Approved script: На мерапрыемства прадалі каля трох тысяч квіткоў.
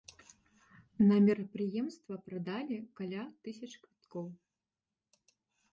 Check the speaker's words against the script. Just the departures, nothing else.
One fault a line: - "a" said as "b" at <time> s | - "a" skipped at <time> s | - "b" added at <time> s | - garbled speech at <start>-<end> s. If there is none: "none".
- "трох" skipped at 3.2 s